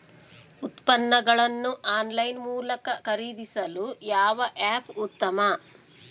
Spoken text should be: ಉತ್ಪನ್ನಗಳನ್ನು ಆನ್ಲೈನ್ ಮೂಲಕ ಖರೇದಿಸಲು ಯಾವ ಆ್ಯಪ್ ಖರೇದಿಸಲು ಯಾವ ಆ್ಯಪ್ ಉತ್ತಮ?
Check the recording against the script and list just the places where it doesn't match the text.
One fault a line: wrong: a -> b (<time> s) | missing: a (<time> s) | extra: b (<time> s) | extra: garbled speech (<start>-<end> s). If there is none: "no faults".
missing: ಖರೇದಿಸಲು ಯಾವ ಆ್ಯಪ್ (4.9 s)